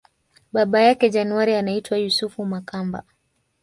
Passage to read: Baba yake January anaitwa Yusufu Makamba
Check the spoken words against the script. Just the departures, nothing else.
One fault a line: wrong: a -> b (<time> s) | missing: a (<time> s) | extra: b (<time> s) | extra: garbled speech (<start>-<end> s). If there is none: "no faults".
no faults